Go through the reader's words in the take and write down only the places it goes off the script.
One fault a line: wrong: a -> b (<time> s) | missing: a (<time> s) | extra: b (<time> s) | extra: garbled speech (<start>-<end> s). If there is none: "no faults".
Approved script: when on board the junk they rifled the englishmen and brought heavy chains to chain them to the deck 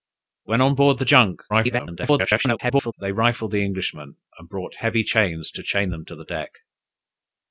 extra: garbled speech (1.5-2.9 s)